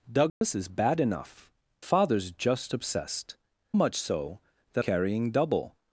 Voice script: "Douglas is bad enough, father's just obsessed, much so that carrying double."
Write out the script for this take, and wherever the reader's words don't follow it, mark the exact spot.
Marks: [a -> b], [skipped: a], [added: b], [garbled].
"Douglas is bad enough, father's just obsessed, much so that carrying double."